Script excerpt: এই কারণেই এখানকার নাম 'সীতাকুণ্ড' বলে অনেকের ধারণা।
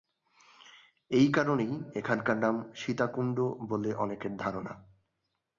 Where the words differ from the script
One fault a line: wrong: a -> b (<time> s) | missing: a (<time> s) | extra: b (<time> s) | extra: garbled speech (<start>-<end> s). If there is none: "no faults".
no faults